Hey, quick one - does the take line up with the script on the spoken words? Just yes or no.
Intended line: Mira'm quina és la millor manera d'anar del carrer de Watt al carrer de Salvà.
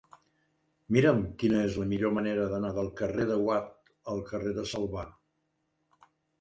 yes